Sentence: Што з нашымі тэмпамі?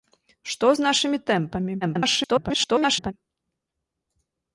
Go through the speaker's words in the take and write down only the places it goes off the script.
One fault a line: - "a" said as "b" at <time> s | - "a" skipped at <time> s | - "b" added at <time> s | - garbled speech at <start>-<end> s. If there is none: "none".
- garbled speech at 1.8-3.1 s